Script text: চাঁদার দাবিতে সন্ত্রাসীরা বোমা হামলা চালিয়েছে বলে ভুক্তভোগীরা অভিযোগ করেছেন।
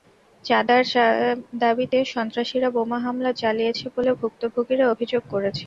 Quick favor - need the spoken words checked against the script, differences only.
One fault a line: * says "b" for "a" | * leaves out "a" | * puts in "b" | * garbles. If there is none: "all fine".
all fine